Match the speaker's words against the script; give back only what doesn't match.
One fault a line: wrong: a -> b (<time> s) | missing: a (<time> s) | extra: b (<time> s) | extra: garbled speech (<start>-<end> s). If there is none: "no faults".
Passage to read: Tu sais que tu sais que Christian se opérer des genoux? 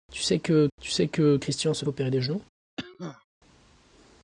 no faults